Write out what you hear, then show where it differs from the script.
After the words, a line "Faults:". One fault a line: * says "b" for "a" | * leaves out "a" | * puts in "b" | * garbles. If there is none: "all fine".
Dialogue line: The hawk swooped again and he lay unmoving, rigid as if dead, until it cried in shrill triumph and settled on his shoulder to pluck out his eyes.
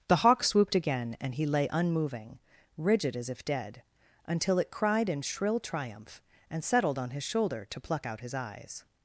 The hawk swooped again and he lay unmoving, rigid as if dead, until it cried in shrill triumph and settled on his shoulder to pluck out his eyes.
Faults:
all fine